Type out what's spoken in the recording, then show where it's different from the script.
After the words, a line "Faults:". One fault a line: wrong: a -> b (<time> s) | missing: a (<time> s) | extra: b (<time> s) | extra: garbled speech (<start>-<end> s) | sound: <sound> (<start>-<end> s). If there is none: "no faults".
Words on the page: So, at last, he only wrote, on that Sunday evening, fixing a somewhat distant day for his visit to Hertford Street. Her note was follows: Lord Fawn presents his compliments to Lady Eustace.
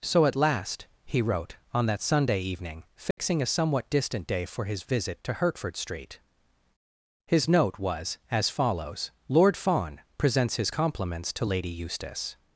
So, at last, he wrote, on that Sunday evening, fixing a somewhat distant day for his visit to Hertford Street. His note was as follows: Lord Fawn presents his compliments to Lady Eustace.
Faults:
missing: only (1.2 s)
sound: dropout (3.1-3.2 s)
wrong: Her -> His (7.3 s)
extra: as (8.3 s)